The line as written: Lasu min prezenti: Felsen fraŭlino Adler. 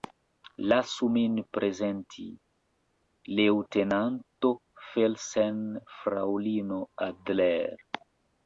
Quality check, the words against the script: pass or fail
fail